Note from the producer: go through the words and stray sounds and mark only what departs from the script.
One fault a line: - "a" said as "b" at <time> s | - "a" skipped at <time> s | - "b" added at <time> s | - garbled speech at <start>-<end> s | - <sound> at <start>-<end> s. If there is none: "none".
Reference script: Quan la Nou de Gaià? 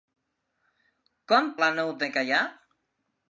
none